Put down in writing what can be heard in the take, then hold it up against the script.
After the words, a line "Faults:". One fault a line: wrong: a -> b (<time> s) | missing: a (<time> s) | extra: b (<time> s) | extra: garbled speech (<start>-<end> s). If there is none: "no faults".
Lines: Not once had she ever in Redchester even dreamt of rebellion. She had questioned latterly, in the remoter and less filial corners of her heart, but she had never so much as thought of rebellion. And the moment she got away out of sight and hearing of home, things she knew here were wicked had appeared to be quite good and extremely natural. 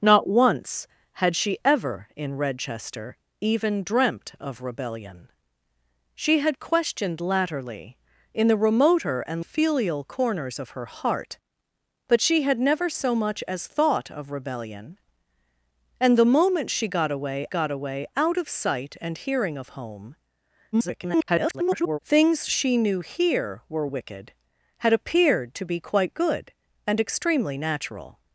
Not once had she ever in Redchester even dreamt of rebellion. She had questioned latterly, in the remoter and filial corners of her heart, but she had never so much as thought of rebellion. And the moment she got away got away out of sight and hearing of home, [garbled] things she knew here were wicked had appeared to be quite good and extremely natural.
Faults:
missing: less (9.4 s)
extra: got away (17.5 s)
extra: garbled speech (20.7-22.0 s)